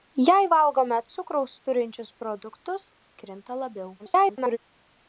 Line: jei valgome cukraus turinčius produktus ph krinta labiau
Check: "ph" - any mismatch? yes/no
yes